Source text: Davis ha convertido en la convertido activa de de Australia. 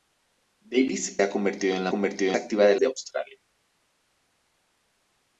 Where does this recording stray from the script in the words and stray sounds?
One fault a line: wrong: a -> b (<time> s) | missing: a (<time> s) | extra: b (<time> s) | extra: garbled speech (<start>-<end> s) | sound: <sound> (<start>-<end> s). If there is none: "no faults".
no faults